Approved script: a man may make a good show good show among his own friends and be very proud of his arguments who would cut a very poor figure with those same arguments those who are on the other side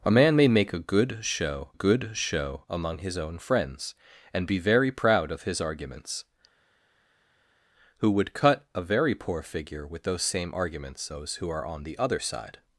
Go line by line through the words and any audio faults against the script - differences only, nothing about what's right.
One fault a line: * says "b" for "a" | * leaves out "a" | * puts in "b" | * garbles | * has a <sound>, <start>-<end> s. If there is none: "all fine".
all fine